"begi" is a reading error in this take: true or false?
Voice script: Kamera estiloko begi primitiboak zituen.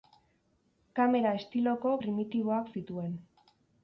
true